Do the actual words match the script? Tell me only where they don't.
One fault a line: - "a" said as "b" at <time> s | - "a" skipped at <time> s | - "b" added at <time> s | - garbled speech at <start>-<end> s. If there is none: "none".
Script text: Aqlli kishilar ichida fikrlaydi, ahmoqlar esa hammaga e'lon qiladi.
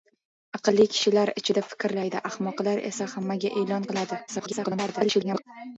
- garbled speech at 4.3-5.4 s